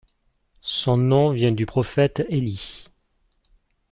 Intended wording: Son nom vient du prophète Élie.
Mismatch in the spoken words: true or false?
false